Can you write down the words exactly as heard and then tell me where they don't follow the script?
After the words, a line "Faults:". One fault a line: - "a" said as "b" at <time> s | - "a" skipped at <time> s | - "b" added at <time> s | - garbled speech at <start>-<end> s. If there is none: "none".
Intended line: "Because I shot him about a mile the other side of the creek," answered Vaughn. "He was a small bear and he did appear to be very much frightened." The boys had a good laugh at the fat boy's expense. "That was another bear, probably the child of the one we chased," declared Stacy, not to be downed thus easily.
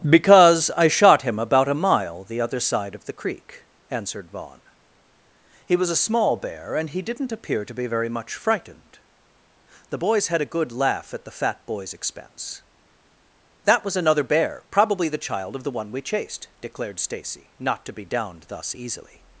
"Because I shot him about a mile the other side of the creek," answered Vaughn. "He was a small bear and he didn't appear to be very much frightened." The boys had a good laugh at the fat boy's expense. "That was another bear, probably the child of the one we chased," declared Stacy, not to be downed thus easily.
Faults:
- "did" said as "didn't" at 7.0 s